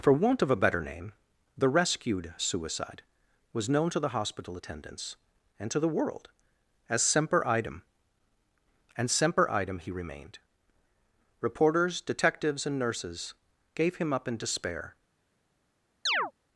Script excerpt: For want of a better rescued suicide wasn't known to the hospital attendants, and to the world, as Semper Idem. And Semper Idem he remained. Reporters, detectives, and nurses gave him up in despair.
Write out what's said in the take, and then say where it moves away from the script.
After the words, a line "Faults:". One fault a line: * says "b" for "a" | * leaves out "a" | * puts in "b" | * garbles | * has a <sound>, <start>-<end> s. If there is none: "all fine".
For want of a better name, the rescued suicide was known to the hospital attendants, and to the world, as Semper Idem. And Semper Idem he remained. Reporters, detectives, and nurses gave him up in despair.
Faults:
* puts in "name the"
* says "was" for "wasn't"
* has a chirp, 16.1-16.3 s